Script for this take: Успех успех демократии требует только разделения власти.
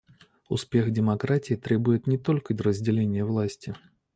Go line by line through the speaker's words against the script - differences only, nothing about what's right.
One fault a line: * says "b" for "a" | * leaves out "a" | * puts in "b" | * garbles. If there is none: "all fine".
* leaves out "успех"
* puts in "не"